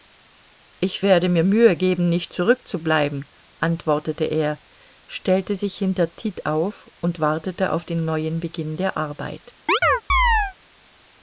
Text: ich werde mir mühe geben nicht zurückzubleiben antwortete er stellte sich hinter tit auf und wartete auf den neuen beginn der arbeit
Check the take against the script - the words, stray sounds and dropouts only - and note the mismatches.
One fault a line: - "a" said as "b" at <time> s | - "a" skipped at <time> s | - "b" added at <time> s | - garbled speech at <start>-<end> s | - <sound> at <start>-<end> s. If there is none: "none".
- chirp at 9.7-10.5 s